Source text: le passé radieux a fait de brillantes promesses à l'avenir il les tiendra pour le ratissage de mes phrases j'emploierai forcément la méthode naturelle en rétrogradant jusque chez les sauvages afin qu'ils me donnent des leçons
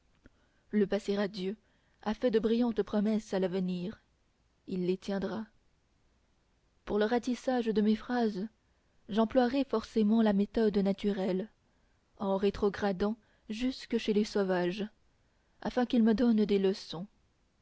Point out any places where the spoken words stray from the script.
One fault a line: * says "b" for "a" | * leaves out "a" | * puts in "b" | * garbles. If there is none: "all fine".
all fine